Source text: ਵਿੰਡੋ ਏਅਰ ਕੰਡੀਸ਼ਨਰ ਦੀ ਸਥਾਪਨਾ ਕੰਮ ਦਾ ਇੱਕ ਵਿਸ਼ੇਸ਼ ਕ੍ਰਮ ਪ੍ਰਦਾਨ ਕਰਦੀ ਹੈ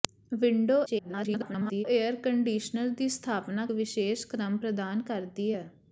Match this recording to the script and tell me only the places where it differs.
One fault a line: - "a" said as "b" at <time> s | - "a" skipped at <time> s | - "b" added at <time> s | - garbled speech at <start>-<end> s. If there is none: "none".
- garbled speech at 0.9-1.8 s
- "ਕੰਮ ਦਾ ਇੱਕ" skipped at 3.7 s